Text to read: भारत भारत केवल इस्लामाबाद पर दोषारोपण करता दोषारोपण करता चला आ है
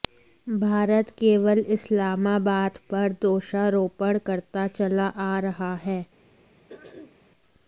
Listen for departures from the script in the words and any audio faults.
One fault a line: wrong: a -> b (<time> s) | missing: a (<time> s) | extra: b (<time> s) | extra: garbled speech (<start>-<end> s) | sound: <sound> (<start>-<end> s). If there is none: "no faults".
missing: भारत (1.1 s)
missing: दोषारोपण करता (4.7 s)
extra: रहा (5.4 s)
sound: throat clearing (6.7-7.2 s)